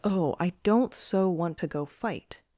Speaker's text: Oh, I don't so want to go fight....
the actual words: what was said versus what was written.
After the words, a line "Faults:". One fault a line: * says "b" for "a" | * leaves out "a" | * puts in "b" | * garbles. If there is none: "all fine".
Oh, I don't so want to go fight....
Faults:
all fine